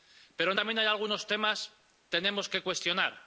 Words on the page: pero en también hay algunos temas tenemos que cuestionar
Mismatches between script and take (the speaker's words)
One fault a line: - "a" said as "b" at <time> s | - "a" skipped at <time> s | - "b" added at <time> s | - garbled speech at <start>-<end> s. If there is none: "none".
none